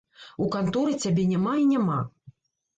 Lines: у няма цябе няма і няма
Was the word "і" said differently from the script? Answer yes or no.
no